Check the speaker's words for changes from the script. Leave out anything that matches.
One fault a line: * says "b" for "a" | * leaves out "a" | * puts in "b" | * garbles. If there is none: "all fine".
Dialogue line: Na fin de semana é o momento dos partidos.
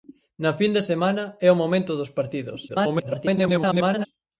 * garbles